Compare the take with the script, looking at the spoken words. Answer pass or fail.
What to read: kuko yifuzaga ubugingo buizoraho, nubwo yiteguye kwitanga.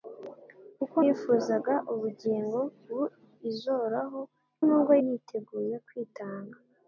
pass